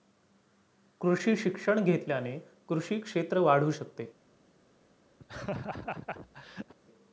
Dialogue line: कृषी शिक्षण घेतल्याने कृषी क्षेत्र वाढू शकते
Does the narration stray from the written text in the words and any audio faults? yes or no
yes